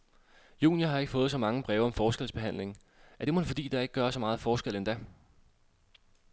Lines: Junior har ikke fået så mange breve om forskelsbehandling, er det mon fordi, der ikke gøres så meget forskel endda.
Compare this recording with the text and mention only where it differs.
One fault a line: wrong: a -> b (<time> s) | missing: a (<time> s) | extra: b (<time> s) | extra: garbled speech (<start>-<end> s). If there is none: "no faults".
no faults